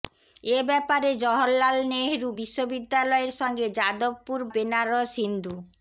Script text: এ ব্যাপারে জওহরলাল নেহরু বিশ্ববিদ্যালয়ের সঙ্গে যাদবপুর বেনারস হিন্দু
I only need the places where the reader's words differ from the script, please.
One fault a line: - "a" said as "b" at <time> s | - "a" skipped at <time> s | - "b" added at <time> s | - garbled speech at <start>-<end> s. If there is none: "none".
none